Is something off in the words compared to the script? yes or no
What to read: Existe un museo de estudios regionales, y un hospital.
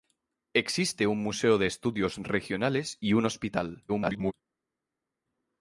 yes